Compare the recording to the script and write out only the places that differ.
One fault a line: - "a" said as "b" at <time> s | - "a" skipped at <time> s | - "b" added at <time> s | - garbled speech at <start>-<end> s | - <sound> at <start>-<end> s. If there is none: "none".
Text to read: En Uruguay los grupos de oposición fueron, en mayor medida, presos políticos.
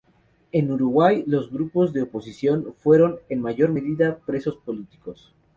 none